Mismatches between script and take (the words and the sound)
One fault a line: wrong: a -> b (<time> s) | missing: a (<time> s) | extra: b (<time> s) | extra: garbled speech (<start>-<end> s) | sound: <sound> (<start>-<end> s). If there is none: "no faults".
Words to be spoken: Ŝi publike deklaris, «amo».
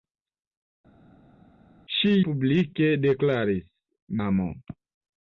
no faults